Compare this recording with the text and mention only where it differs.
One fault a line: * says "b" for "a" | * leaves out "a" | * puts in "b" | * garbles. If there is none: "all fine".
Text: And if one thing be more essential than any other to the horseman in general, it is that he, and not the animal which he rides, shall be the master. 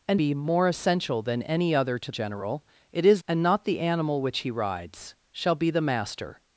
* leaves out "if one thing"
* leaves out "the horseman in"
* leaves out "that he"